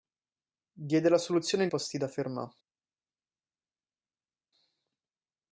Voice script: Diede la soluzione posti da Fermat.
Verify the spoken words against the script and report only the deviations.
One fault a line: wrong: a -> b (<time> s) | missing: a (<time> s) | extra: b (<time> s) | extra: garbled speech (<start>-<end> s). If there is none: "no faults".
no faults